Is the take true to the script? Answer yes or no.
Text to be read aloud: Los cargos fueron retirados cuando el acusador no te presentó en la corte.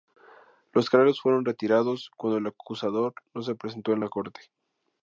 no